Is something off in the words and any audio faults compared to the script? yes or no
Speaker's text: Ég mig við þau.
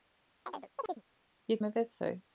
yes